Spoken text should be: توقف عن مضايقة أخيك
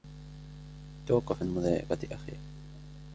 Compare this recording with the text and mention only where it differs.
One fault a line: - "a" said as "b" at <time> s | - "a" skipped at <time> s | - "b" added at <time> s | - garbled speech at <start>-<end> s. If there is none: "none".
none